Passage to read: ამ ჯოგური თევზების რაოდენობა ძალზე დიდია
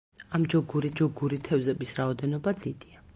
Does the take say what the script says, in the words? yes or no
no